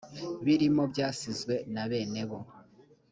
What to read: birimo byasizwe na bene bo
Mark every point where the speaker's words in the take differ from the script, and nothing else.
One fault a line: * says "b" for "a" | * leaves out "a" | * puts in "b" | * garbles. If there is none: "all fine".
all fine